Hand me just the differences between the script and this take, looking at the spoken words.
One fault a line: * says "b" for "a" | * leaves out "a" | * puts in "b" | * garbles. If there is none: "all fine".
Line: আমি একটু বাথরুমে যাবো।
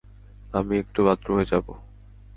all fine